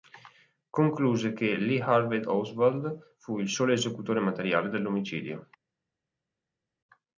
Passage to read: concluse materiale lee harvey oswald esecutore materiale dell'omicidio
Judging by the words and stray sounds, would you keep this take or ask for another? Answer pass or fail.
fail